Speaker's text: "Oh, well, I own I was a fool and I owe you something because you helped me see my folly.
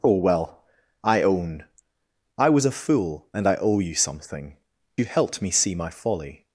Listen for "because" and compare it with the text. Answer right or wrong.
wrong